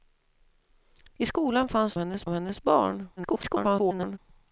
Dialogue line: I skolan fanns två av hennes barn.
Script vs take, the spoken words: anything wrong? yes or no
yes